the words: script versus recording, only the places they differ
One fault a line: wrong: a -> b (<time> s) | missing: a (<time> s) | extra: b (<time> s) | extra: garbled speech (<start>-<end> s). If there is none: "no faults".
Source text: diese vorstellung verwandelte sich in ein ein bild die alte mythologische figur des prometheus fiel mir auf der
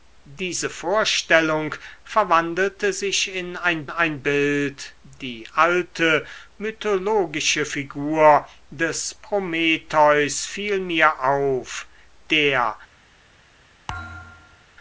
no faults